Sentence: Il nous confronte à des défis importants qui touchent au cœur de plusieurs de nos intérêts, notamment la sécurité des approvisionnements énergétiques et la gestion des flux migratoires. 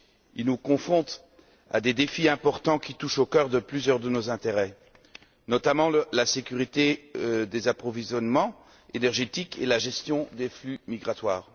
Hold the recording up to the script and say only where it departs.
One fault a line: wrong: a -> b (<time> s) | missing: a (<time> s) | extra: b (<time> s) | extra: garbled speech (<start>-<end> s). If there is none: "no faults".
no faults